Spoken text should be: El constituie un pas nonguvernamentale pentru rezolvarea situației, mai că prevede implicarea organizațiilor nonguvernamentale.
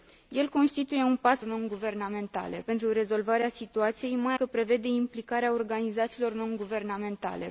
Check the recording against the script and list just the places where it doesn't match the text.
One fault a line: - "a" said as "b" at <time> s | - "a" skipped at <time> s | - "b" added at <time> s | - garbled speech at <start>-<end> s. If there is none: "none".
none